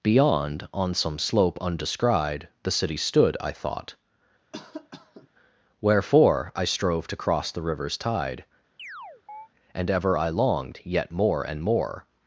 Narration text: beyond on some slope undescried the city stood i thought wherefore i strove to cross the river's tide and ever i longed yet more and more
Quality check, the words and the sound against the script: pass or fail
fail